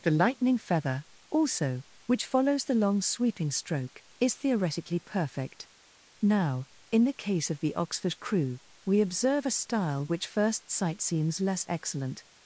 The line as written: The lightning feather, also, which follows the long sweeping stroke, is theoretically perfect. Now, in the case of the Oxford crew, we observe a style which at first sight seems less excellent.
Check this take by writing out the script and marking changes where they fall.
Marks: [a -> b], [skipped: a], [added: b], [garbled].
The lightning feather, also, which follows the long sweeping stroke, is theoretically perfect. Now, in the case of the Oxford crew, we observe a style which [skipped: at] first sight seems less excellent.